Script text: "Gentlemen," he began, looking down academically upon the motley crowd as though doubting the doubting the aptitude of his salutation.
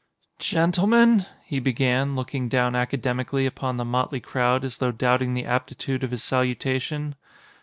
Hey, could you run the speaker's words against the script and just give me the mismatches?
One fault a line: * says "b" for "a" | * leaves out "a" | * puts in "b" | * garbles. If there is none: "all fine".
* leaves out "doubting the"